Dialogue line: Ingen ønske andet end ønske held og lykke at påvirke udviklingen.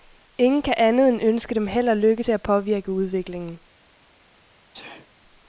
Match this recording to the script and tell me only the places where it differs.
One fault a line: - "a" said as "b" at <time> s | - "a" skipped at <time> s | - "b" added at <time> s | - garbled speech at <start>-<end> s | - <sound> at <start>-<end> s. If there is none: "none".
- "ønske" said as "kan" at 0.6 s
- "dem" added at 1.6 s
- "til" added at 2.2 s
- sneeze at 4.7-5.1 s